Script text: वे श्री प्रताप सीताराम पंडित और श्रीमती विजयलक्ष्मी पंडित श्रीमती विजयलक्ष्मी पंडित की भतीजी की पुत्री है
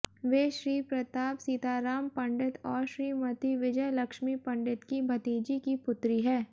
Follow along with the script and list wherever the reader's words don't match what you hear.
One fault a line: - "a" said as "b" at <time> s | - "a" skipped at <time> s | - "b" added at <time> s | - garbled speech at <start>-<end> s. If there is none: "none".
- "श्रीमती विजयलक्ष्मी पंडित" skipped at 4.8 s